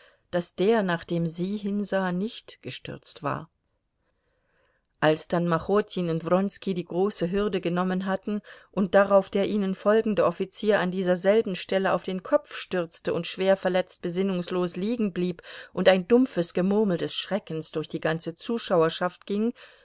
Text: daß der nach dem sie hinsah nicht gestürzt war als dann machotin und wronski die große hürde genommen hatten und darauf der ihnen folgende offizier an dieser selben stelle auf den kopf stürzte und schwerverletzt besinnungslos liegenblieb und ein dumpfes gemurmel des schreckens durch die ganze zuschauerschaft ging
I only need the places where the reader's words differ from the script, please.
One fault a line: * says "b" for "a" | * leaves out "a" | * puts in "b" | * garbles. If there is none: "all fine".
all fine